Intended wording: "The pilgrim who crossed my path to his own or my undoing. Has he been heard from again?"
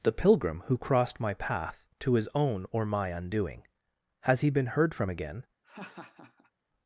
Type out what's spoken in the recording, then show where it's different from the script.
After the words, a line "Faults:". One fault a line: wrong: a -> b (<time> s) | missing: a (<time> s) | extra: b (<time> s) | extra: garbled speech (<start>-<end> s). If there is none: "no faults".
"The pilgrim who crossed my path to his own or my undoing. Has he been heard from again?"
Faults:
no faults